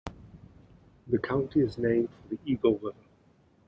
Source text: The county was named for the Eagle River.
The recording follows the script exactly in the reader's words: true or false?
false